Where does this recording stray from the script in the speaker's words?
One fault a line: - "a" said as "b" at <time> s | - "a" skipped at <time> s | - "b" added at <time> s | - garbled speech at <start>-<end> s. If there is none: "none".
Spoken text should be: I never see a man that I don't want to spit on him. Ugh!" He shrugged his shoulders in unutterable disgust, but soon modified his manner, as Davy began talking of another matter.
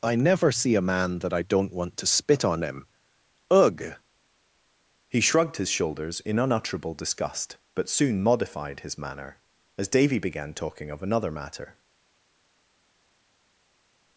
none